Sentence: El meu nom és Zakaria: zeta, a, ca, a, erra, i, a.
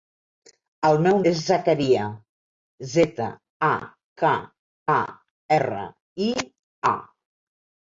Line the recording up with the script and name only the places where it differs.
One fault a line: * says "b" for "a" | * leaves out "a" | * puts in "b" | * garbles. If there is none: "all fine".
* leaves out "nom"